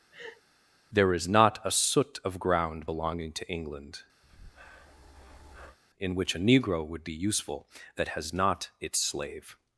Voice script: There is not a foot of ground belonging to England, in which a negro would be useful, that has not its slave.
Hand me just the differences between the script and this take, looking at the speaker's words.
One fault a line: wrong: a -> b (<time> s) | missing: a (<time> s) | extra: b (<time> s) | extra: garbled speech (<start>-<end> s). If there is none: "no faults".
wrong: foot -> soot (1.7 s)